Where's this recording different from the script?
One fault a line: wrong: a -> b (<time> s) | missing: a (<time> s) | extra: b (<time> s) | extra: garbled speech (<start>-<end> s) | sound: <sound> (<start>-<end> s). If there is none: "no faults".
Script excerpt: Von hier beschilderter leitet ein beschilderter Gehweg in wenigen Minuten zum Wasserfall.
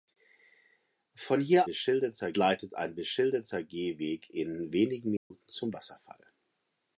sound: dropout (5.2-5.3 s)